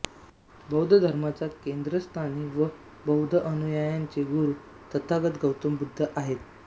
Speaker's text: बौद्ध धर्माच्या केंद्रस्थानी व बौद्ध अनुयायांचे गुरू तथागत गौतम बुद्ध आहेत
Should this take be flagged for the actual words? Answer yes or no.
no